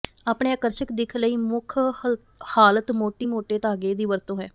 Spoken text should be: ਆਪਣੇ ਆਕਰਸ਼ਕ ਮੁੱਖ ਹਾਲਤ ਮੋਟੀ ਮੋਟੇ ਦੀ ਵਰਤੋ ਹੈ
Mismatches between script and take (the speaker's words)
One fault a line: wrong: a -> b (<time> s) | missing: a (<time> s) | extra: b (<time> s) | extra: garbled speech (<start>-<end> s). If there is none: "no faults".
extra: ਦਿੱਖ ਲਈ (0.9 s)
extra: ਧਾਗੇ (3.6 s)